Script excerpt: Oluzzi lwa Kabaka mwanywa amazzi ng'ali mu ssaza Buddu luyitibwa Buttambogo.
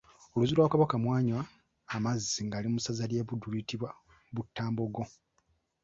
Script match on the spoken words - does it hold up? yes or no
no